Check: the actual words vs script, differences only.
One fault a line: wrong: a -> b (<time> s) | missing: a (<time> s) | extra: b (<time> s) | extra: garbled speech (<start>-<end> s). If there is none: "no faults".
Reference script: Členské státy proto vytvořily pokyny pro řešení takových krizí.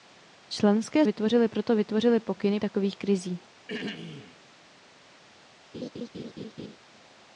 wrong: státy -> vytvořily (1.0 s)
missing: pro řešení (2.6 s)